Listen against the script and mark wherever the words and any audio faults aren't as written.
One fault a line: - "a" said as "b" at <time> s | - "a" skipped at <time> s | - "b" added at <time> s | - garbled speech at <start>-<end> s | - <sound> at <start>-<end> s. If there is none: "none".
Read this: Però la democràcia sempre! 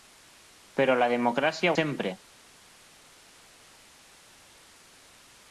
none